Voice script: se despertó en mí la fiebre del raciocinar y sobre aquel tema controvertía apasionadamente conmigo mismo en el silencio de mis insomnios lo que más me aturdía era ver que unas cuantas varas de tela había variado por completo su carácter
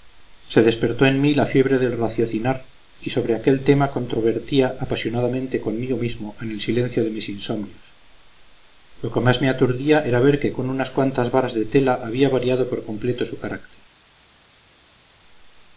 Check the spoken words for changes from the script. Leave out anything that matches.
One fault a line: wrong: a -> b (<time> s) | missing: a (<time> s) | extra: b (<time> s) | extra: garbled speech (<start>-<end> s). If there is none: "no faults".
extra: con (10.5 s)